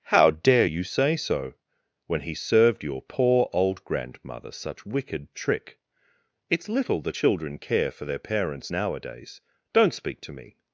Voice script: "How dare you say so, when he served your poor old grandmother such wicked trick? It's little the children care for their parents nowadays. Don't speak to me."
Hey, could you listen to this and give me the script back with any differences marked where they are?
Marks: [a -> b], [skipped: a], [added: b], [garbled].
"How dare you say so, when he served your poor old grandmother such wicked trick? It's little the children care for their parents nowadays. Don't speak to me."